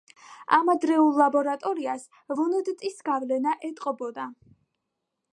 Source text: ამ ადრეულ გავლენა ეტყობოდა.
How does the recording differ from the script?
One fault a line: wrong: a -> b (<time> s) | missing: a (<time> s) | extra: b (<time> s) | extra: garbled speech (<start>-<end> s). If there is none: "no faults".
extra: ლაბორატორიას ვუნდტის (1.2 s)